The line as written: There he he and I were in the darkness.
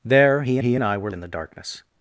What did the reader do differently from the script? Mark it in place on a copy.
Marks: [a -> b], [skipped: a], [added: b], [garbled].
There he he and I were in the darkness.